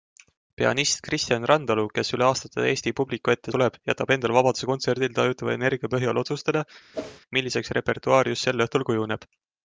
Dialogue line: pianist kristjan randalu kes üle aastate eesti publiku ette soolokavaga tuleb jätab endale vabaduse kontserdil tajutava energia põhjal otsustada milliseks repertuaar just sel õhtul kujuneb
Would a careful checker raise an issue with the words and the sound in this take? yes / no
yes